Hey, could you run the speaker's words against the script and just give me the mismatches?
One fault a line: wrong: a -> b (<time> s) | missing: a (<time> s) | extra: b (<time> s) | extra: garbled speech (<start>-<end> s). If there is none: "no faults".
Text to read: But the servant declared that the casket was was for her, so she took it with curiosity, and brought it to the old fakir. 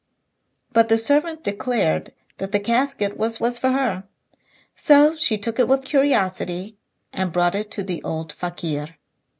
no faults